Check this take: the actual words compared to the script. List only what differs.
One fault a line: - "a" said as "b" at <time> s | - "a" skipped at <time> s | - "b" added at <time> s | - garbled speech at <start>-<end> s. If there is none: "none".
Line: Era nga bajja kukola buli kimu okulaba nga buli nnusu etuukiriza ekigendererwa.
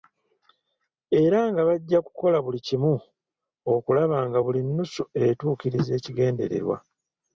none